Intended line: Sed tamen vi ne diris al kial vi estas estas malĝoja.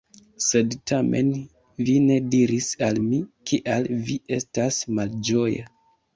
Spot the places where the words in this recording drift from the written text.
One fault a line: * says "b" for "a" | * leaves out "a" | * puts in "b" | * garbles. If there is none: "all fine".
* puts in "mi"
* leaves out "estas"